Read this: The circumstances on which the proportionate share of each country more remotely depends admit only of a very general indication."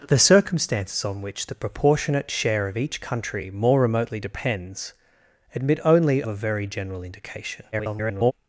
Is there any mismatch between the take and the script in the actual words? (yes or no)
yes